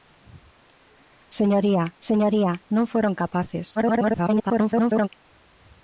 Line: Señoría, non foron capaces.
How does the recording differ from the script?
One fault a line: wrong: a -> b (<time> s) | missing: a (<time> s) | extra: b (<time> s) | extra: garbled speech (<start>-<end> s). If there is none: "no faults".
extra: señoría (2.1 s)
extra: garbled speech (3.8-5.1 s)